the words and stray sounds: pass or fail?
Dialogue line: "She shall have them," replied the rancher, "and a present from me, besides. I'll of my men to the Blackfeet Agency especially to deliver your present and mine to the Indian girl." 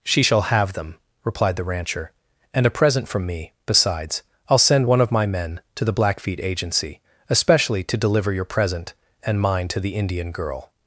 fail